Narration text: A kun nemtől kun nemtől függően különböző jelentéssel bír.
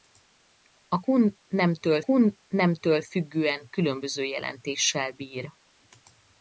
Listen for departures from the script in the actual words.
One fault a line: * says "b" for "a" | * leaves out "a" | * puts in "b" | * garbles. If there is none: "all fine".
all fine